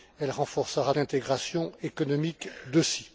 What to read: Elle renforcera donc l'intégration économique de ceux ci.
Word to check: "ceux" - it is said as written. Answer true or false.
false